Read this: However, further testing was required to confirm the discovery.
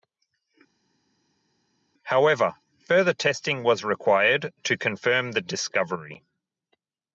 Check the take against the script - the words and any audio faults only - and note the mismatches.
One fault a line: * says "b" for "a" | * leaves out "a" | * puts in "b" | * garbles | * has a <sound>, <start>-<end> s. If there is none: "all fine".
all fine